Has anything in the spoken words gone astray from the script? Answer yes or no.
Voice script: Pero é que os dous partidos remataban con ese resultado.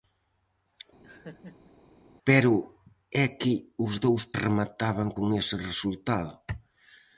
yes